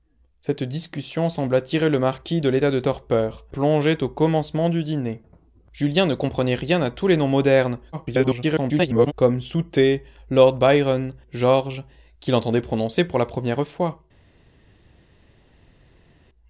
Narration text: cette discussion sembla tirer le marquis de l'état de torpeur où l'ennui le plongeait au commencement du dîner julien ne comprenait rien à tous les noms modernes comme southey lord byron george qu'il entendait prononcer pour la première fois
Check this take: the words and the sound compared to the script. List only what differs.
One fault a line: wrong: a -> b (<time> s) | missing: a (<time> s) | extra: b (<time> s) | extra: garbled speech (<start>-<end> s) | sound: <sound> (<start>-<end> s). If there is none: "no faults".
missing: où l'ennui le (3.5 s)
extra: garbled speech (7.9-9.1 s)